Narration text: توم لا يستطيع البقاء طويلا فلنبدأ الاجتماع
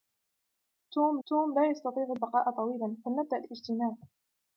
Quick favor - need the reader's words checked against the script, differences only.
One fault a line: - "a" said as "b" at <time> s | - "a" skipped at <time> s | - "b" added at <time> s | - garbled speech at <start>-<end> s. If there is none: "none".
- "توم" added at 1.3 s